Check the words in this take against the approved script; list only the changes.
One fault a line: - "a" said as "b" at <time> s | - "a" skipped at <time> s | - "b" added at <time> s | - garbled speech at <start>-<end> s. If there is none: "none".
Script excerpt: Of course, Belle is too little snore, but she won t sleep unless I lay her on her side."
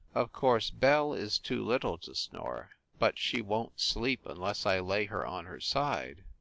- "to" added at 2.0 s